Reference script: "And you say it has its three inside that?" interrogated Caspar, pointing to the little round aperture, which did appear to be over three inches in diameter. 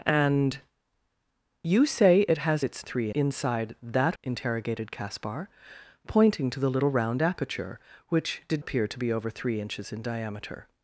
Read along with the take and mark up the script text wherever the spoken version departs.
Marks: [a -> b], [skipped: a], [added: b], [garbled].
"And you say it has its three inside that?" interrogated Caspar, pointing to the little round aperture, which did appear to be over three inches in diameter.